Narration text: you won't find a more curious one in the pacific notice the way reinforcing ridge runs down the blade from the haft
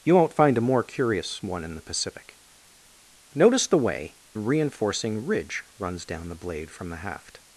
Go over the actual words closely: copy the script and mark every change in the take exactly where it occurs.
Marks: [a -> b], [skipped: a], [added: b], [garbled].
you won't find a more curious one in the pacific notice the way reinforcing ridge runs down the blade from the haft